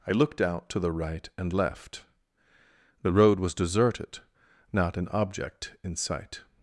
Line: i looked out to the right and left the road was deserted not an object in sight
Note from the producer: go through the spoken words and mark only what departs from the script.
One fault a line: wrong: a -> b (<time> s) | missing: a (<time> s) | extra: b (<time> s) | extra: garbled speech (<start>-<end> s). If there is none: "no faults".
no faults